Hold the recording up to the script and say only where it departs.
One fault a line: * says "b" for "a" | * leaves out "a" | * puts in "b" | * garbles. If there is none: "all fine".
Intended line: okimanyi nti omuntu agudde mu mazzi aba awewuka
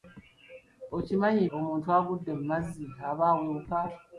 * leaves out "nti"